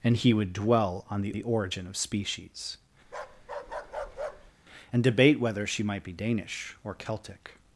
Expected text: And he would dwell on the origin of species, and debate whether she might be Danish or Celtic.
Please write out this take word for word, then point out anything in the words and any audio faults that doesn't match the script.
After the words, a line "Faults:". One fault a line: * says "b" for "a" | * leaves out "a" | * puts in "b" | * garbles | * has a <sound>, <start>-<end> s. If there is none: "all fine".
And he would dwell on the the origin of species, and debate whether she might be Danish or Celtic.
Faults:
* puts in "the"
* has a bark, 3.0-4.5 s